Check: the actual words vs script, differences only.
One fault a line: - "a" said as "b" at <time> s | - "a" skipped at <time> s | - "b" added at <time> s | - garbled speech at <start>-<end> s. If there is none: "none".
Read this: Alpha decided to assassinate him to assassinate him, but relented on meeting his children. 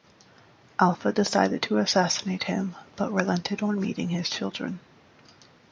- "to assassinate him" skipped at 2.7 s